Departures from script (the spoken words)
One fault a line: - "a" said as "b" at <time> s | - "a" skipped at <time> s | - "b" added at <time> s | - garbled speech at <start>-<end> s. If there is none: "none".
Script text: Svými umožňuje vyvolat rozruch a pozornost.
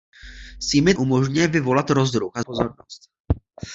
none